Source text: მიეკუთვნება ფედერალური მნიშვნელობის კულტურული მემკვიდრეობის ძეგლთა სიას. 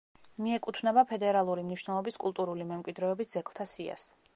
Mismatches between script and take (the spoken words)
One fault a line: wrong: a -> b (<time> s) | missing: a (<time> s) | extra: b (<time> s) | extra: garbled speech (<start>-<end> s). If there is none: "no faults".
no faults